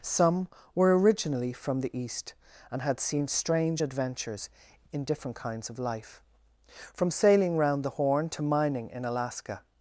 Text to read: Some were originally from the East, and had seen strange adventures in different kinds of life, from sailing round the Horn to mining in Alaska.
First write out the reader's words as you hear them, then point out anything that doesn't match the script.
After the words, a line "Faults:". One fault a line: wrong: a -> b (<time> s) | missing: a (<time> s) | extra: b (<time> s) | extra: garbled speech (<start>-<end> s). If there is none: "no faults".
Some were originally from the East, and had seen strange adventures in different kinds of life, from sailing round the Horn to mining in Alaska.
Faults:
no faults